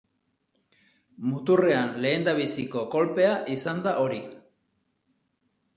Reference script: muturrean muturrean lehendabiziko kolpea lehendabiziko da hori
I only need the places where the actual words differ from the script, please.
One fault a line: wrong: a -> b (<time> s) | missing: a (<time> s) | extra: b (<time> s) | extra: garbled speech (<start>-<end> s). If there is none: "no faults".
missing: muturrean (1.9 s)
wrong: lehendabiziko -> izan (3.6 s)